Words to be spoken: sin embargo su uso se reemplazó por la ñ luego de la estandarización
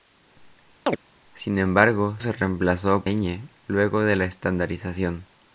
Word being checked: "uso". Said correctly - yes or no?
no